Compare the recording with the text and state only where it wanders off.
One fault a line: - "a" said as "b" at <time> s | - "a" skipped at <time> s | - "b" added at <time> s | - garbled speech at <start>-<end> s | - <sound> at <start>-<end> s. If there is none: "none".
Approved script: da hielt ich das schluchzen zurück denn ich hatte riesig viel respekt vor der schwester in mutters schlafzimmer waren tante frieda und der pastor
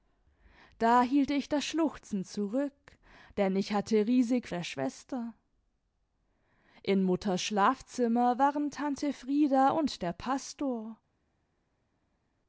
- "viel respekt vor" skipped at 4.5 s